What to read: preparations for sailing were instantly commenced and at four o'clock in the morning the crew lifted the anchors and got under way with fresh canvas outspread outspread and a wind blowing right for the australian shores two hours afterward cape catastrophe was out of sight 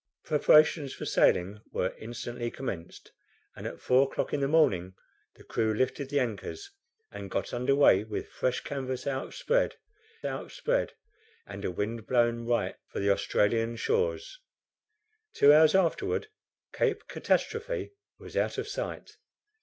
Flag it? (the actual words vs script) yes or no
no